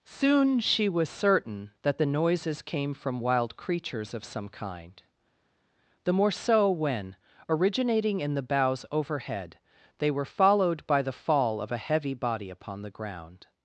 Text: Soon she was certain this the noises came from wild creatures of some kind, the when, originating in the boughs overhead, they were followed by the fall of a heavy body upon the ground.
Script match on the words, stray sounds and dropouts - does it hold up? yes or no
no